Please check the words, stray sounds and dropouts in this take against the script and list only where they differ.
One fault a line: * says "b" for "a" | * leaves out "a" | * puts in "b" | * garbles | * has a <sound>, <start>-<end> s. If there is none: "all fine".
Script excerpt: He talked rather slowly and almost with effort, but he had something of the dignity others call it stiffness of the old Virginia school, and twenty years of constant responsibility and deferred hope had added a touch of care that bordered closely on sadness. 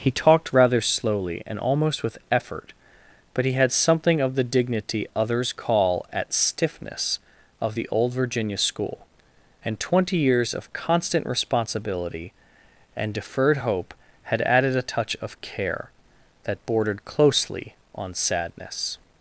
* says "at" for "it"